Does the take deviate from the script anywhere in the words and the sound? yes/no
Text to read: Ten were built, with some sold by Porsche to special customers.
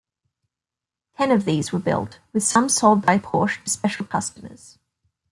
yes